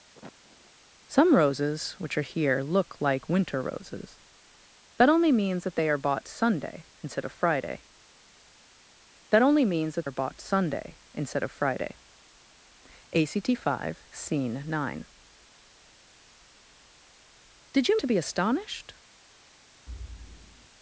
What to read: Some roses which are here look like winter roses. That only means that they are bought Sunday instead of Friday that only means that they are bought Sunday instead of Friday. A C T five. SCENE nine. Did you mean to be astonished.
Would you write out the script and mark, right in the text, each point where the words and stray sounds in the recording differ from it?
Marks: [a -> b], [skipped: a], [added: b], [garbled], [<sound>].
[sniff] Some roses which are here look like winter roses. That only means that they are bought Sunday instead of Friday that only means that [skipped: they] are bought Sunday instead of Friday. A C T five. SCENE nine. Did you [skipped: mean] to be astonished. [thud]